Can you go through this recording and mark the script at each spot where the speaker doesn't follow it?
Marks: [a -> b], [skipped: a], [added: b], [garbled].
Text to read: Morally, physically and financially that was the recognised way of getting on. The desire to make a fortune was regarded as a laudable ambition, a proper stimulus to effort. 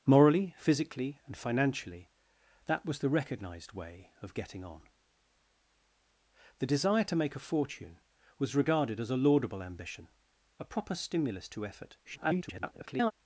Morally, physically and financially that was the recognised way of getting on. The desire to make a fortune was regarded as a laudable ambition, a proper stimulus to effort. [garbled]